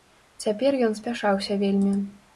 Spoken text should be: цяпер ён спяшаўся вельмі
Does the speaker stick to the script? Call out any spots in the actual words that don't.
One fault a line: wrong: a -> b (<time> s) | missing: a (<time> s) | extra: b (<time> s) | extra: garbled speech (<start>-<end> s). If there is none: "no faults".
no faults